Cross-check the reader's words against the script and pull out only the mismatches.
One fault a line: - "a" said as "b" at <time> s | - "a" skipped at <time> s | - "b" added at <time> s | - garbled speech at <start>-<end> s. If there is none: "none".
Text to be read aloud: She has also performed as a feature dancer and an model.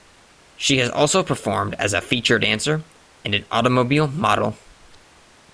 - "automobile" added at 3.5 s